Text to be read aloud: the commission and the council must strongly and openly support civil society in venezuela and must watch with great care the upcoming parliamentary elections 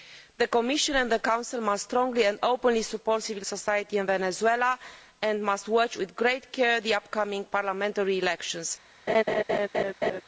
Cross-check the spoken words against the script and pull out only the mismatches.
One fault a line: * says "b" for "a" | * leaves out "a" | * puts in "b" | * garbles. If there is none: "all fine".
all fine